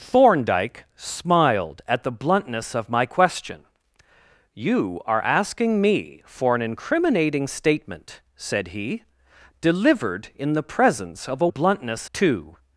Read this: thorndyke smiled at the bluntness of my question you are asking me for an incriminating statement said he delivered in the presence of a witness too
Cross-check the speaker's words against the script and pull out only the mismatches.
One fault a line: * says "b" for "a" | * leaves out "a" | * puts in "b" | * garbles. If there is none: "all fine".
* says "bluntness" for "witness"